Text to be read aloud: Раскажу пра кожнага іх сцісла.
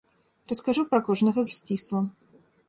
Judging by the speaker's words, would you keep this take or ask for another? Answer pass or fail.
pass